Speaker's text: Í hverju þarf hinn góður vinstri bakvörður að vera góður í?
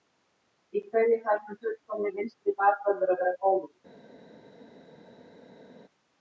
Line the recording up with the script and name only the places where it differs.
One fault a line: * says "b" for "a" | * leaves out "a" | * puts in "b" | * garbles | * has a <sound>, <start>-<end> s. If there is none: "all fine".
* says "fullkomni" for "góður"